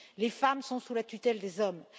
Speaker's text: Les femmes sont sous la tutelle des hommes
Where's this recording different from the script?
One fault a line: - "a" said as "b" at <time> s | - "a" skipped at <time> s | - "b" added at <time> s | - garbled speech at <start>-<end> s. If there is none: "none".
none